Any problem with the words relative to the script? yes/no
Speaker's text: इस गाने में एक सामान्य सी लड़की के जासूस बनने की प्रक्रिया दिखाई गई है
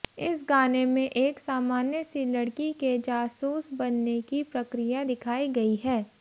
no